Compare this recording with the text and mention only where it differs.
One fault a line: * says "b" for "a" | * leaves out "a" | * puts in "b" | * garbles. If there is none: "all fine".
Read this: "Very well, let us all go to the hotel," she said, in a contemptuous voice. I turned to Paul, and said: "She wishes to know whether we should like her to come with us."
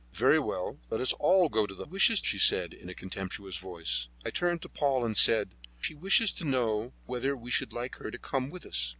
* says "wishes" for "hotel"